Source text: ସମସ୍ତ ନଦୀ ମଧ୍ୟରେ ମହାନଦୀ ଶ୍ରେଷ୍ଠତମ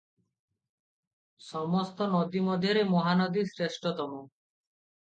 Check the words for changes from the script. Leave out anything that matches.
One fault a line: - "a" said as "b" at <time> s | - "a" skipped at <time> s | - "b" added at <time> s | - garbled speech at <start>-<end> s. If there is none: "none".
none